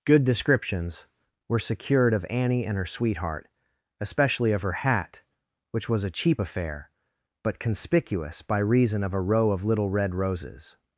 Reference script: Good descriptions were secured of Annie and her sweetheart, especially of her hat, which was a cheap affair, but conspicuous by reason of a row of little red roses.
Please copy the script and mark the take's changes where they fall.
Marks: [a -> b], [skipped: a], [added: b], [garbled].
Good descriptions were secured of Annie and her sweetheart, especially of her hat, which was a cheap affair, but conspicuous by reason of a row of little red roses.